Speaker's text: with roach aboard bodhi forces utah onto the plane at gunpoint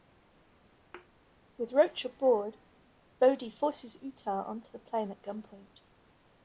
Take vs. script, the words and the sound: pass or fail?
fail